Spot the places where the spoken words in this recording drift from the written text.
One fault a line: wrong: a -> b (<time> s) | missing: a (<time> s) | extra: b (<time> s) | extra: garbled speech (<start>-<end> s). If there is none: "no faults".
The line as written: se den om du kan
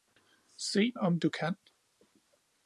missing: den (0.9 s)